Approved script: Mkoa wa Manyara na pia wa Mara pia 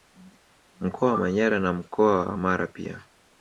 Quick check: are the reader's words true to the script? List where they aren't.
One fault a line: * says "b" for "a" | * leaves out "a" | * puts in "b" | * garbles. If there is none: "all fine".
* says "mkoa" for "pia"